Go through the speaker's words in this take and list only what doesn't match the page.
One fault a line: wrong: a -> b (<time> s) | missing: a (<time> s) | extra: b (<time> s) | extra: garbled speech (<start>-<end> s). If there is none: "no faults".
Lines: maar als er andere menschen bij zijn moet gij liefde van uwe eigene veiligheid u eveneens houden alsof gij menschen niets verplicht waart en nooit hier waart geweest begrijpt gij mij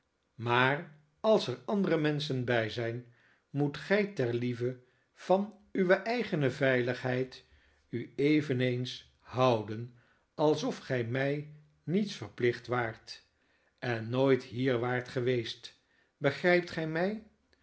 extra: ter (4.1 s)
wrong: menschen -> mij (11.0 s)